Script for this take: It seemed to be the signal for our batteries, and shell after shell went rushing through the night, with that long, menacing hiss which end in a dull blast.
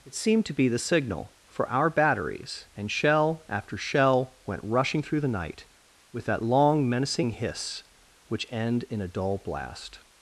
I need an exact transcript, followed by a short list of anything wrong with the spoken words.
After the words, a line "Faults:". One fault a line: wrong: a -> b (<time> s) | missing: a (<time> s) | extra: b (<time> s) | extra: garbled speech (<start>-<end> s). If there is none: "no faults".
It seemed to be the signal for our batteries, and shell after shell went rushing through the night, with that long, menacing hiss which end in a dull blast.
Faults:
no faults